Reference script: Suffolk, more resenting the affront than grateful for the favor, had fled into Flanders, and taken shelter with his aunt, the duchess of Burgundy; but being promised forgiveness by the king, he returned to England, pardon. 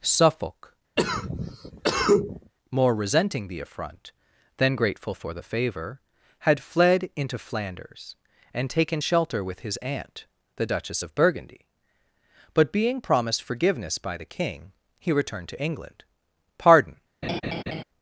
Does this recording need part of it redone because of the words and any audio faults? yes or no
yes